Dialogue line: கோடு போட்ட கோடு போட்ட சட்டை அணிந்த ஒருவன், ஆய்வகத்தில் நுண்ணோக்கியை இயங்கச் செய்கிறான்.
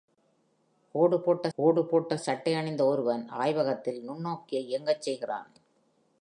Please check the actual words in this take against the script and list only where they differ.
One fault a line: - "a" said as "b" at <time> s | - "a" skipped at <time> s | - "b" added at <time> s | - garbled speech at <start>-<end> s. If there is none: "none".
none